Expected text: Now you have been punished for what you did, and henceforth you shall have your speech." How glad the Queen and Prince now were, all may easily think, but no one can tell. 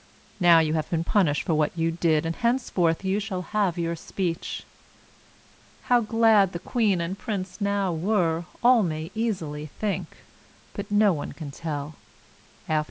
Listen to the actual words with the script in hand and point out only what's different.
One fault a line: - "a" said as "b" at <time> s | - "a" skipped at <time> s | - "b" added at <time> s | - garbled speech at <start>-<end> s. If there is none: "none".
none